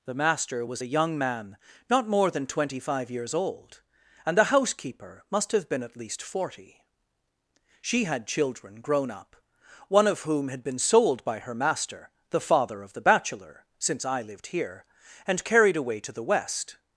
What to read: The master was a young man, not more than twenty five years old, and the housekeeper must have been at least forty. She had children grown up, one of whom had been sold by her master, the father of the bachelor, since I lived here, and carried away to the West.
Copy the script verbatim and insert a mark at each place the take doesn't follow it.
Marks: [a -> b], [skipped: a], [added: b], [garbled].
The master was a young man, not more than twenty five years old, and the housekeeper must have been at least forty. She had children grown up, one of whom had been sold by her master, the father of the bachelor, since I lived here, and carried away to the West.